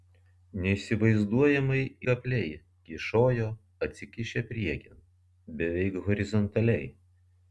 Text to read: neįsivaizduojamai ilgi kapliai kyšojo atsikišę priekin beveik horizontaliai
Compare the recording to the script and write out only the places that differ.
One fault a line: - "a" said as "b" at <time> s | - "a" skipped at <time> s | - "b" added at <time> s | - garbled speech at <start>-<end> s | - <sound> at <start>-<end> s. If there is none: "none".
- "ilgi" skipped at 1.8 s